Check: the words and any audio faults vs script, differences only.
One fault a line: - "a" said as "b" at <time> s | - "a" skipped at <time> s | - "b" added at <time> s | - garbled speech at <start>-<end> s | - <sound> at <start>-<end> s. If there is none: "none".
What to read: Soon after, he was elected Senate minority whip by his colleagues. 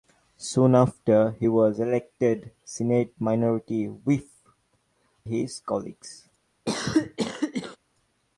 - "by" skipped at 4.3 s
- cough at 6.7-7.8 s